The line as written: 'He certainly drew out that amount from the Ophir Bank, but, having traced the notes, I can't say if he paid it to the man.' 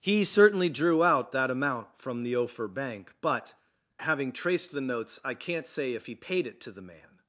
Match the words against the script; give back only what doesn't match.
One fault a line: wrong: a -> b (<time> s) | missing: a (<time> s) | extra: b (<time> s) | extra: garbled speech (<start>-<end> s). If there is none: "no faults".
no faults